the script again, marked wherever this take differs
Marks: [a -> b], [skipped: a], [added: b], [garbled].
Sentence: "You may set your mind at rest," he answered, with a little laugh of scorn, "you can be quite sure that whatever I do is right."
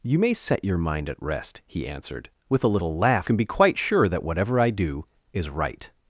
"You may set your mind at rest," he answered, with a little laugh [skipped: of scorn, "you] can be quite sure that whatever I do is right."